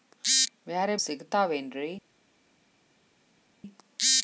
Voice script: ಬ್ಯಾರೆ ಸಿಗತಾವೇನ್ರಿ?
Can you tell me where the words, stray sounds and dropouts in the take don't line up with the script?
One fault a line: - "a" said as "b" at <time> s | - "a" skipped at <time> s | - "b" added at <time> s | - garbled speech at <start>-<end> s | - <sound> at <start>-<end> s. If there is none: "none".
none